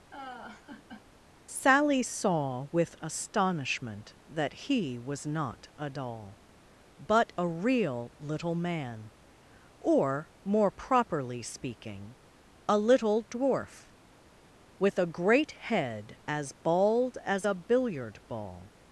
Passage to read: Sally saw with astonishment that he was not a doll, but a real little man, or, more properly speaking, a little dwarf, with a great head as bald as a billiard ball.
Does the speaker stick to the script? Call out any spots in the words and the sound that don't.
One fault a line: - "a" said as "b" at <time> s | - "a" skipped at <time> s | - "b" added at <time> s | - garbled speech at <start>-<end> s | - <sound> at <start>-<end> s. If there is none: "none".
- laugh at 0.1-1.0 s